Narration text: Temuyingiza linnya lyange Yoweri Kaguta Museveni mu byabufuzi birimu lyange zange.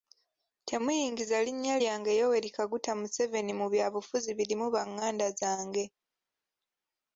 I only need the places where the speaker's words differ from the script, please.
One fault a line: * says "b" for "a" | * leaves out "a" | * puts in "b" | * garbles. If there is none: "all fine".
* says "banganda" for "lyange"